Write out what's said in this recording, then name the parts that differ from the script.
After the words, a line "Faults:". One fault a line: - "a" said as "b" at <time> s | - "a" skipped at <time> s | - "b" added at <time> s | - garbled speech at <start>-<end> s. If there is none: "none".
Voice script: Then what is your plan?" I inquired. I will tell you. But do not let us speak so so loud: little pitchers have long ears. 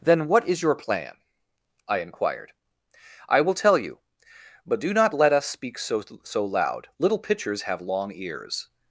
Then what is your plan?" I inquired. I will tell you. But do not let us speak so so loud: little pitchers have long ears.
Faults:
none